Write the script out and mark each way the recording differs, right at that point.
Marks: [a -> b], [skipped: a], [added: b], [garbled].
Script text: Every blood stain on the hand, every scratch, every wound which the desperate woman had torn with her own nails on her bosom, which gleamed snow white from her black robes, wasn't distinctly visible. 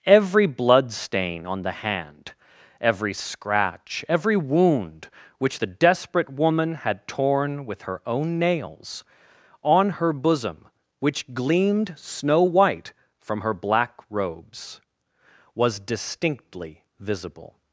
Every blood stain on the hand, every scratch, every wound which the desperate woman had torn with her own nails on her bosom, which gleamed snow white from her black robes, [wasn't -> was] distinctly visible.